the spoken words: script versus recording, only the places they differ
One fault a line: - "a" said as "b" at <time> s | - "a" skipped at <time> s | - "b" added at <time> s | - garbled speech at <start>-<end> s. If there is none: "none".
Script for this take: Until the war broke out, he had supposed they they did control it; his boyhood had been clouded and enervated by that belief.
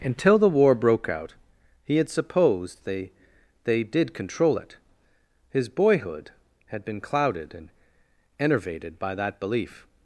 none